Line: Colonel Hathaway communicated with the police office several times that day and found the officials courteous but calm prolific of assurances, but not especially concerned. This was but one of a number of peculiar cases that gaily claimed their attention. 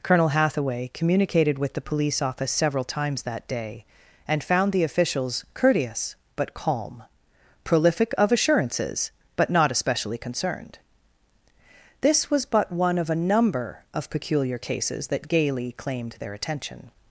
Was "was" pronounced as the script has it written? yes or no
yes